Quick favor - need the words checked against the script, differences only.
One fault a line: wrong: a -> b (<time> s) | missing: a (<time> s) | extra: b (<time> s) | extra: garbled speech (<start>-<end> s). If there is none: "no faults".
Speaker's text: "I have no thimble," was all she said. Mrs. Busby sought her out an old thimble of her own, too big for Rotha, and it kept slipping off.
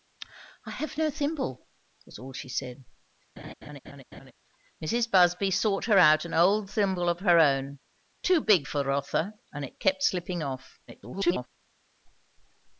extra: garbled speech (10.9-11.5 s)